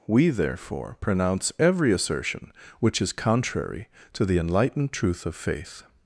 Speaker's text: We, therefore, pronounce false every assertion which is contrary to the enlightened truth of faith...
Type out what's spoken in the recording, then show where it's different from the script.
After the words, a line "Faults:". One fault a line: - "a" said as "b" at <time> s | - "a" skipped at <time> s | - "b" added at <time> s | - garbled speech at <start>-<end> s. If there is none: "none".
We, therefore, pronounce every assertion which is contrary to the enlightened truth of faith...
Faults:
- "false" skipped at 1.5 s